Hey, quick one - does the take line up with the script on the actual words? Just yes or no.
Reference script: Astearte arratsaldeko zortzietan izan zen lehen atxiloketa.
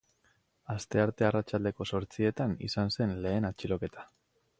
yes